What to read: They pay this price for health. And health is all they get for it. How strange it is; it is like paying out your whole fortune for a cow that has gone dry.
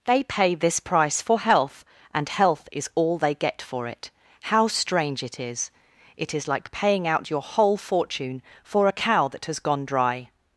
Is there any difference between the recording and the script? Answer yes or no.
no